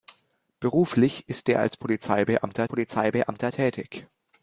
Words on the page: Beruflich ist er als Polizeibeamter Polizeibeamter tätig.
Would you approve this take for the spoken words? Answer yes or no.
yes